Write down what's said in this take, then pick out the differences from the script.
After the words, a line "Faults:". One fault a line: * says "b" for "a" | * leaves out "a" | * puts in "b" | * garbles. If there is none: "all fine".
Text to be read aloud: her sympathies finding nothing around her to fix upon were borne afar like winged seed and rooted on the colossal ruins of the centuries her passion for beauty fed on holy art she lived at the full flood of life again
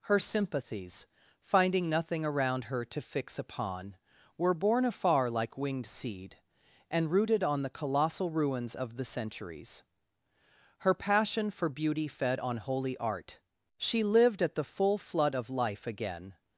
her sympathies finding nothing around her to fix upon were borne afar like winged seed and rooted on the colossal ruins of the centuries her passion for beauty fed on holy art she lived at the full flood of life again
Faults:
all fine